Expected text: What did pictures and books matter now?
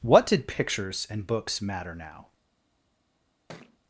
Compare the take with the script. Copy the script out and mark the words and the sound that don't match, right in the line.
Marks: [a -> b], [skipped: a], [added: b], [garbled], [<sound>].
What did pictures and books matter now? [thud]